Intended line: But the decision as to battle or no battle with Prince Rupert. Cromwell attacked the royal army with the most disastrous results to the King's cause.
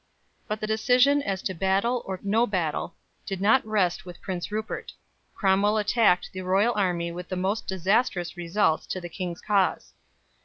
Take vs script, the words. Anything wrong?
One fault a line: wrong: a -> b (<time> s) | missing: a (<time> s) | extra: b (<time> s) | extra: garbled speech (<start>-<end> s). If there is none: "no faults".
extra: did not rest (3.3 s)